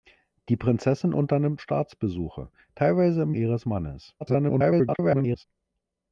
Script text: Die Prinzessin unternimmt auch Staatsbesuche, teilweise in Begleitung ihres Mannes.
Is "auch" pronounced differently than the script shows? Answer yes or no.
yes